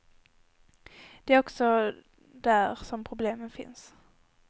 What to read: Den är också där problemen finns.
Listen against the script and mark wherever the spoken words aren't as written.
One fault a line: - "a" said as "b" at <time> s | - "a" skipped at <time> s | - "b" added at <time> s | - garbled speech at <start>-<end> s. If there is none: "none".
- "Den" said as "Det" at 1.2 s
- "som" added at 2.8 s